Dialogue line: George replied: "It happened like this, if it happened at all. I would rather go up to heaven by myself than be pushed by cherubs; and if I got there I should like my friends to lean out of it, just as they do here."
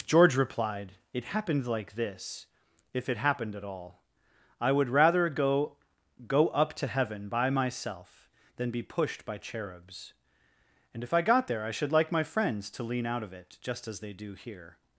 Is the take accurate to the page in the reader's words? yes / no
no